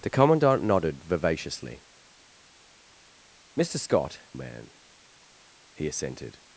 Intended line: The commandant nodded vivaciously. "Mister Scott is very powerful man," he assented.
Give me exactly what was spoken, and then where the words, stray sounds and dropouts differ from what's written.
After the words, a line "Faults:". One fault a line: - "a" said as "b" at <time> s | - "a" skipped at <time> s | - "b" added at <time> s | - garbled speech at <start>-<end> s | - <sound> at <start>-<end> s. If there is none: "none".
The commandant nodded vivaciously. "Mister Scott man," he assented.
Faults:
- "is very powerful" skipped at 4.2 s